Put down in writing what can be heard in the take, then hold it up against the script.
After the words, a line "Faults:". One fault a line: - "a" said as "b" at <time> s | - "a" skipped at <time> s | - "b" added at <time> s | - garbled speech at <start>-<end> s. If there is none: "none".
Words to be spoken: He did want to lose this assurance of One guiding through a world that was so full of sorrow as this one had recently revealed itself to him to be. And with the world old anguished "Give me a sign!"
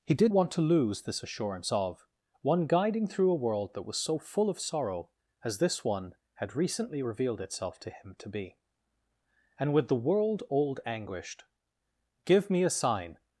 He did want to lose this assurance of One guiding through a world that was so full of sorrow as this one had recently revealed itself to him to be. And with the world old anguished "Give me a sign!"
Faults:
none